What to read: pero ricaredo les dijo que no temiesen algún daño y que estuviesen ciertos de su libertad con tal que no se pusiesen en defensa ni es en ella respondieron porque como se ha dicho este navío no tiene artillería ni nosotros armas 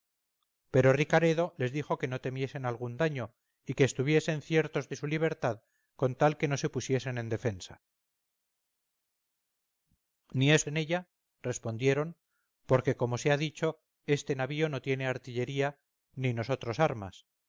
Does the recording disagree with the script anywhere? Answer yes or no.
no